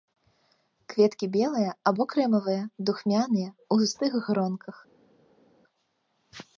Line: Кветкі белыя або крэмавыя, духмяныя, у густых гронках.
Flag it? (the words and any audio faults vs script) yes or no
no